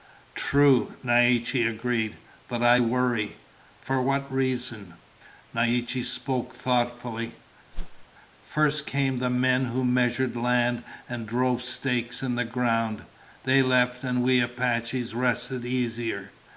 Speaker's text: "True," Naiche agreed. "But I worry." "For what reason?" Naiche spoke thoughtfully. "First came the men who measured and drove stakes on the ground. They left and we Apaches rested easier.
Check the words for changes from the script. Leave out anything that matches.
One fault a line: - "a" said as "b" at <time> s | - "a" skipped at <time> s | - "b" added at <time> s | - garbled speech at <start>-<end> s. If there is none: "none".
- "land" added at 10.4 s
- "on" said as "in" at 12.2 s